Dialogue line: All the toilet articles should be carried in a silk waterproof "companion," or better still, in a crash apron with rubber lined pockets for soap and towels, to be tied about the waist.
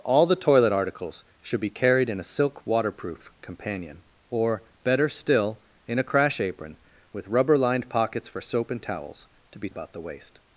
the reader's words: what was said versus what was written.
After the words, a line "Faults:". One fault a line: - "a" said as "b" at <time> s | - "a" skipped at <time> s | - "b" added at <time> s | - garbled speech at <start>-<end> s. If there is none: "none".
All the toilet articles should be carried in a silk waterproof "companion," or better still, in a crash apron with rubber lined pockets for soap and towels, to be about the waist.
Faults:
- "tied" skipped at 9.7 s